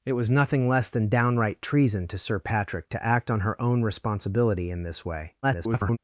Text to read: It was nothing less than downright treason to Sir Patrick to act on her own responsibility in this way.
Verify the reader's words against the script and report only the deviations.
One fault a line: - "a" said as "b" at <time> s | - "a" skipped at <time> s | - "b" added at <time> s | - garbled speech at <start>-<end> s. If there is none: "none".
- garbled speech at 5.4-6.0 s